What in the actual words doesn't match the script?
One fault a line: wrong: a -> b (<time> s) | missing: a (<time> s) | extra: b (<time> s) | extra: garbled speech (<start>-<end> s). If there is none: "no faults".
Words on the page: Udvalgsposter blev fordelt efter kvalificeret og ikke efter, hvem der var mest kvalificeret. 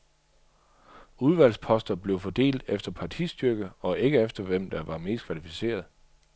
wrong: kvalificeret -> partistyrke (2.9 s)